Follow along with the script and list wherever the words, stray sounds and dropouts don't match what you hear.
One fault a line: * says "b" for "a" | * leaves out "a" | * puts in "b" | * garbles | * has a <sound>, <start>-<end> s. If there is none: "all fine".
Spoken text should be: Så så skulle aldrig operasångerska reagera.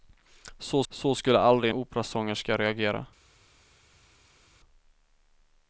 all fine